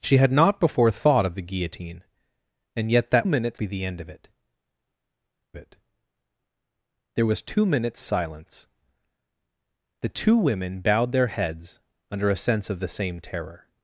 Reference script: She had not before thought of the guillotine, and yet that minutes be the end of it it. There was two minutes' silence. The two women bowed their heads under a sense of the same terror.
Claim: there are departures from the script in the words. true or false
false